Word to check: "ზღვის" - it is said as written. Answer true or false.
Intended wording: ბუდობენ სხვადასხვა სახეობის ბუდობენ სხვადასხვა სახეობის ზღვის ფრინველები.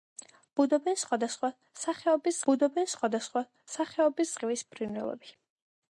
true